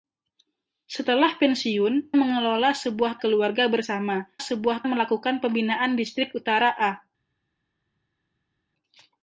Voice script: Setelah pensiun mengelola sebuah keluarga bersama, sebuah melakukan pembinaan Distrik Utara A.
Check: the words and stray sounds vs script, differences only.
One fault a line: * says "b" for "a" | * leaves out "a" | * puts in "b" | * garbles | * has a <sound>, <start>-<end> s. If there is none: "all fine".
all fine